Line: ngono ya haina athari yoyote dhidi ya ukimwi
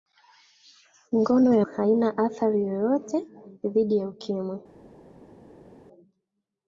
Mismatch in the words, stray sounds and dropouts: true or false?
false